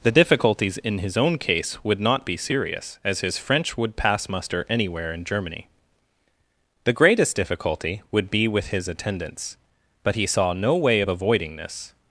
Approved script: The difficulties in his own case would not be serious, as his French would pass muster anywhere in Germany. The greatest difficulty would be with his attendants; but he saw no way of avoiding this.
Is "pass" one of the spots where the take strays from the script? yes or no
no